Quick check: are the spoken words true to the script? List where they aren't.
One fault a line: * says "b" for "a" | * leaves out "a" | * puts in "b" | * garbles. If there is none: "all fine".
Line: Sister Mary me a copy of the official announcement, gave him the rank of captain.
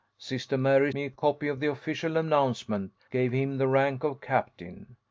all fine